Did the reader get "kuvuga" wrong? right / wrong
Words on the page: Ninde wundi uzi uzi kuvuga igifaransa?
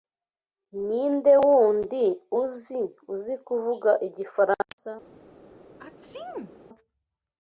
right